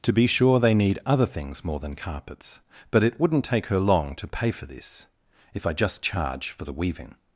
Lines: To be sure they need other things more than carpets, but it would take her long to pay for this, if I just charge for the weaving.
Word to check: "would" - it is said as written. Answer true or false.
false